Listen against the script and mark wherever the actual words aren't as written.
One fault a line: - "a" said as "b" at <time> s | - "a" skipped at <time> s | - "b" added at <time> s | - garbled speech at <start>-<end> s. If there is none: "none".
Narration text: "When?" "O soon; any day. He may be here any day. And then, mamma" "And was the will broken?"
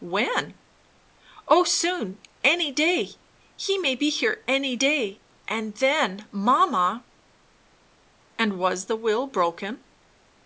none